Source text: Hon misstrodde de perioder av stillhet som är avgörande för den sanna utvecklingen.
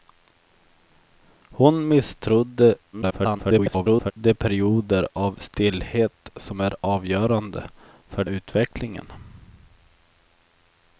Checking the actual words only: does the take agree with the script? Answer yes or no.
no